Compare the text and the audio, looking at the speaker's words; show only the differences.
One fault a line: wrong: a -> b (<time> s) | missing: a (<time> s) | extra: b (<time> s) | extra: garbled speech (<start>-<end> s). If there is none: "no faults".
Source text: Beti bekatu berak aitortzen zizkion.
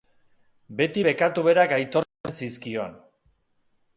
no faults